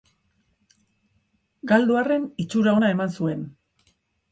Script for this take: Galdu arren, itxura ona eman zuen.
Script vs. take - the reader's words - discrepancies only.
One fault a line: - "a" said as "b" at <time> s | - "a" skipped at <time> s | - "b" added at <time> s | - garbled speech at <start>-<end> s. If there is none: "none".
none